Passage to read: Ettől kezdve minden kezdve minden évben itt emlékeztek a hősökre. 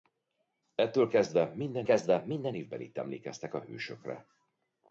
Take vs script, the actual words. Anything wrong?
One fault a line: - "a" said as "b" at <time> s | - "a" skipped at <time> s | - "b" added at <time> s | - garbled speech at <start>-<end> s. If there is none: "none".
none